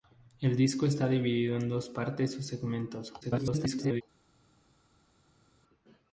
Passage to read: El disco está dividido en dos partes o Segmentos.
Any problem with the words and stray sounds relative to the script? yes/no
yes